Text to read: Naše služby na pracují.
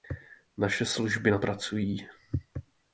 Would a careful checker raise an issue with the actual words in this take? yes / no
no